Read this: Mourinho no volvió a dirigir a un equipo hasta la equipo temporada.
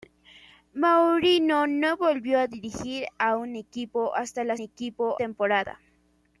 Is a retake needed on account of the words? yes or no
no